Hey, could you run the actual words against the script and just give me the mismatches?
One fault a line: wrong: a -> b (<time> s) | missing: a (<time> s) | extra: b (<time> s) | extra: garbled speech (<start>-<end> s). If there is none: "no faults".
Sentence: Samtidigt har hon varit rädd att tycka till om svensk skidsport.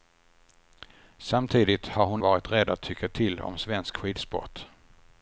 no faults